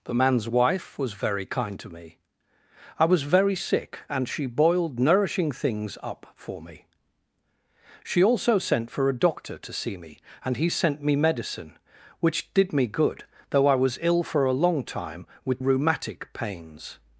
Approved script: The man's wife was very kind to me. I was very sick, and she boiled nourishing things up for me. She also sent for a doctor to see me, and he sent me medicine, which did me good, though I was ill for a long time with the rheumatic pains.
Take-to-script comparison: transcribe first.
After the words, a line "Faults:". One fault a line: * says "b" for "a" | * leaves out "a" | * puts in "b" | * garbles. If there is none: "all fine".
The man's wife was very kind to me. I was very sick, and she boiled nourishing things up for me. She also sent for a doctor to see me, and he sent me medicine, which did me good, though I was ill for a long time with rheumatic pains.
Faults:
* leaves out "the"